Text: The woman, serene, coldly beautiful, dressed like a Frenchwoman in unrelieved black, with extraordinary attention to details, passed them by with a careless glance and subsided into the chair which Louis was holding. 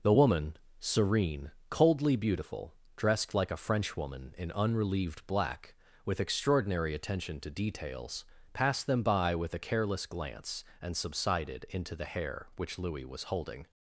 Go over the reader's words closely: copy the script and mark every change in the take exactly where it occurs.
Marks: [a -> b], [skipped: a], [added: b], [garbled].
The woman, serene, coldly beautiful, dressed like a Frenchwoman in unrelieved black, with extraordinary attention to details, passed them by with a careless glance and subsided into the [chair -> hair] which Louis was holding.